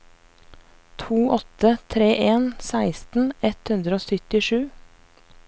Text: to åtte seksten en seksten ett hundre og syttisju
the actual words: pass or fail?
fail